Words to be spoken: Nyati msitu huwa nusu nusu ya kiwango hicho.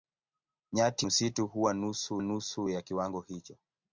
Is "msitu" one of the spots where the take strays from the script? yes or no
no